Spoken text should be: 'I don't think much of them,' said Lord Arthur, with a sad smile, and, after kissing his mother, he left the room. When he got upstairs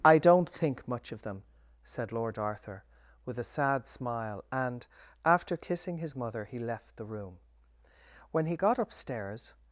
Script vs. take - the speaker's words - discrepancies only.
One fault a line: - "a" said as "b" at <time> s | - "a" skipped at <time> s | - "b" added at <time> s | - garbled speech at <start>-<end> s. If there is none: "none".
none